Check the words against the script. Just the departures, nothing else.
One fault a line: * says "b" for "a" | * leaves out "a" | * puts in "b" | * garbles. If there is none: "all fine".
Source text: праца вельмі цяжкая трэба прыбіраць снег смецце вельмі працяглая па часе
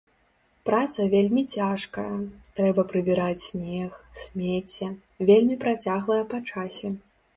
all fine